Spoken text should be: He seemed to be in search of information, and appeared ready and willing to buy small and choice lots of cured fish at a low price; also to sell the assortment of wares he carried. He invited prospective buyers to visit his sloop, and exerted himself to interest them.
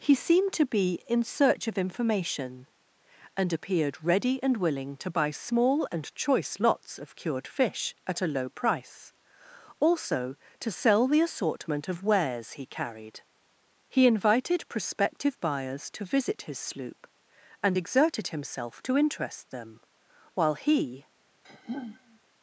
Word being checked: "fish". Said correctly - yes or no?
yes